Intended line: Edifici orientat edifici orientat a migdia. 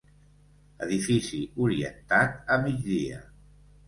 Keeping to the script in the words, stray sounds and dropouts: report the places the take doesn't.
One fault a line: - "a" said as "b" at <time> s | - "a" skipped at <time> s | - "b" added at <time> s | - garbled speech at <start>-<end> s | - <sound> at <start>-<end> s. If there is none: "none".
- "edifici orientat" skipped at 2.4 s